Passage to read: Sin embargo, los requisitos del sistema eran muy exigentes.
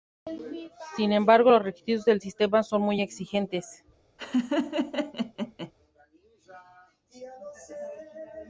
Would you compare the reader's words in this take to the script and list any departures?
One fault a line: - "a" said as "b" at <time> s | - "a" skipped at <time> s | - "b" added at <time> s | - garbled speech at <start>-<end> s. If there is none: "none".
- "eran" said as "son" at 2.6 s